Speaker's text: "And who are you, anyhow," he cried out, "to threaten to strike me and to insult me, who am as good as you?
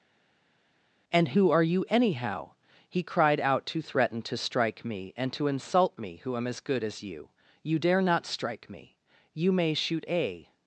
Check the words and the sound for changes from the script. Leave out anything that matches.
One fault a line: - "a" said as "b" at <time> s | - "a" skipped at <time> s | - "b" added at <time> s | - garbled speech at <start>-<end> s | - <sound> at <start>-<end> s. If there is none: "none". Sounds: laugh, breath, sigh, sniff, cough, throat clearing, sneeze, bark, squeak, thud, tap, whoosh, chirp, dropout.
- "You dare not strike me You may shoot a" added at 7.6 s